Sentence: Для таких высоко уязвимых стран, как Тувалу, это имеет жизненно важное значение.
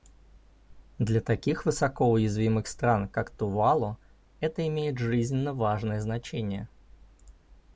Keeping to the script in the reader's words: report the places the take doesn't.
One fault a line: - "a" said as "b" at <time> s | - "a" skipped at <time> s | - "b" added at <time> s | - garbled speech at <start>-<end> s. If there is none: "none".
none